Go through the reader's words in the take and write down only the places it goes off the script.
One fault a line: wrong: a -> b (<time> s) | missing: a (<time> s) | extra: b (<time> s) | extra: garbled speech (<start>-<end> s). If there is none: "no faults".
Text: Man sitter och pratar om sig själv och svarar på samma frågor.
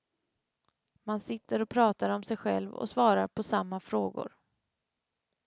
no faults